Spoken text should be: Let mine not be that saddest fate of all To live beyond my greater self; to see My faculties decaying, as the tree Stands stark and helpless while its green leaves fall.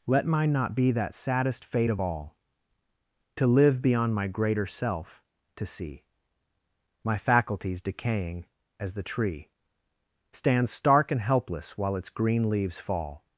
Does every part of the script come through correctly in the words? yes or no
yes